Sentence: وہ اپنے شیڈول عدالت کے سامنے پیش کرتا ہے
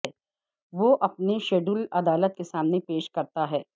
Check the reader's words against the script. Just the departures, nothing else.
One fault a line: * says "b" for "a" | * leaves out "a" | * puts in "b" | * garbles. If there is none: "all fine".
all fine